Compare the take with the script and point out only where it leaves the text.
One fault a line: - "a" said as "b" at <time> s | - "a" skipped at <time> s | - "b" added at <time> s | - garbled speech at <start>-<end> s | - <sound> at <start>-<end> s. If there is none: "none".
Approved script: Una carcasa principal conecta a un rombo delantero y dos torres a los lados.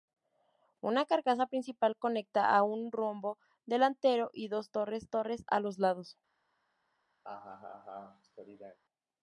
- "torres" added at 5.1 s
- laugh at 7.2-8.8 s